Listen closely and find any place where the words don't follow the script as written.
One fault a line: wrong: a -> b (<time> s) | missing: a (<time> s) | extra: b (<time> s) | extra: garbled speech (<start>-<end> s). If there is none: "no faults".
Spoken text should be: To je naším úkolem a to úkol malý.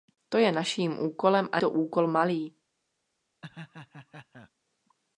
no faults